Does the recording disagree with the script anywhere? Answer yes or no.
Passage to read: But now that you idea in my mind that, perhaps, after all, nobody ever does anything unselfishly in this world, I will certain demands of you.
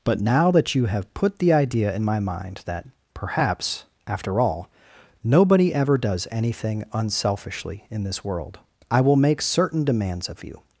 yes